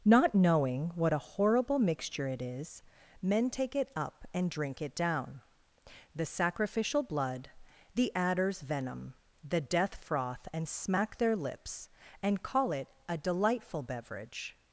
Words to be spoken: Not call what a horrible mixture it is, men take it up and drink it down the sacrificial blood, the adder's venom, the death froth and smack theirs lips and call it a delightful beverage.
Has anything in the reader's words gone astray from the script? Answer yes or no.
yes